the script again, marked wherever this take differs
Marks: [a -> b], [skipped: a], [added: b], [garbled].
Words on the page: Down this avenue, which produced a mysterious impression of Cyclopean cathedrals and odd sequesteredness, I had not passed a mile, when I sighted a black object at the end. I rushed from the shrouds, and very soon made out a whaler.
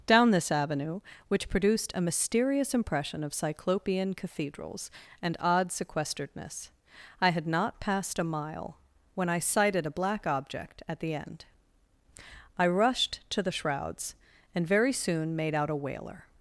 Down this avenue, which produced a mysterious impression of Cyclopean cathedrals and odd sequesteredness, I had not passed a mile, when I sighted a black object at the end. I rushed [from -> to] the shrouds, and very soon made out a whaler.